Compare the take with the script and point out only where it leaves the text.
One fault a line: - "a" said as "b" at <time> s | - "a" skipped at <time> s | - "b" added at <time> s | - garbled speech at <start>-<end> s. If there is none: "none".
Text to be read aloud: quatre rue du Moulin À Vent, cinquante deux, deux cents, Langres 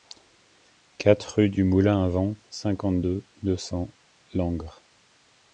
none